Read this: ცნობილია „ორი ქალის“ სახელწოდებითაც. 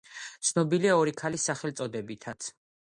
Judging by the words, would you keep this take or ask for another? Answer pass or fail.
pass